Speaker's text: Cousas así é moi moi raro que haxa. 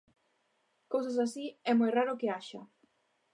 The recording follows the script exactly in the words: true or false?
false